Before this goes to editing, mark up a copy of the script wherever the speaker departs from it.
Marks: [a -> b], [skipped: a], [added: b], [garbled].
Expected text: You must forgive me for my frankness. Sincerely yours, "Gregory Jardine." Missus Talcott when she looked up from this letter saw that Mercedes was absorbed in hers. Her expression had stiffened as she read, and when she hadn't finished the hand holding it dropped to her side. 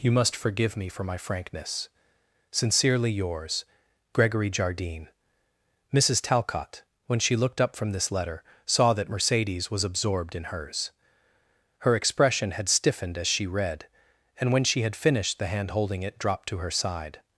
You must forgive me for my frankness. Sincerely yours, "Gregory Jardine." Missus Talcott when she looked up from this letter saw that Mercedes was absorbed in hers. Her expression had stiffened as she read, and when she [hadn't -> had] finished the hand holding it dropped to her side.